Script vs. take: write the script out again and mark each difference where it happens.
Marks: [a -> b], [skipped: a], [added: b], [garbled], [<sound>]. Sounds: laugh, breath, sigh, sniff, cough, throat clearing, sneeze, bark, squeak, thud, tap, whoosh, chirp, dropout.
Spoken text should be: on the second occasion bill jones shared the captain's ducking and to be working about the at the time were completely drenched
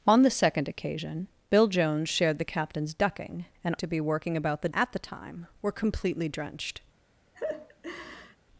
on the second occasion bill jones shared the captain's ducking and to be working about the at the time were completely drenched [laugh]